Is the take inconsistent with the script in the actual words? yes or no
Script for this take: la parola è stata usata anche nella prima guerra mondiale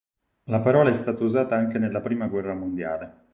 no